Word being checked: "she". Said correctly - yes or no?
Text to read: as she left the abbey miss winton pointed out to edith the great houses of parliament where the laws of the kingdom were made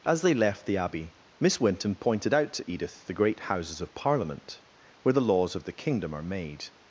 no